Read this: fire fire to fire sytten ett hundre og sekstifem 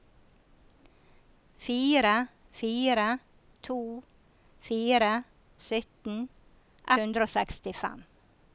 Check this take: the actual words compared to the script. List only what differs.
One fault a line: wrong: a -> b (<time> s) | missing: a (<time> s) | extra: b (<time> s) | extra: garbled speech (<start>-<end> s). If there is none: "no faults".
missing: ett (6.3 s)